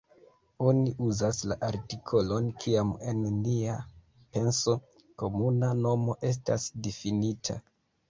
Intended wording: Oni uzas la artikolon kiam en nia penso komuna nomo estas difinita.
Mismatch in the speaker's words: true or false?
false